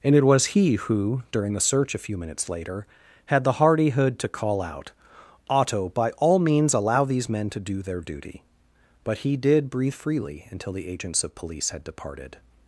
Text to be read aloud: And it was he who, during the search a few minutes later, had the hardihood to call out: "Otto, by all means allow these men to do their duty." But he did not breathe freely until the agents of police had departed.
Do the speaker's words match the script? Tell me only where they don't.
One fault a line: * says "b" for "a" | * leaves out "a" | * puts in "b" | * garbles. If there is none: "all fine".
* leaves out "not"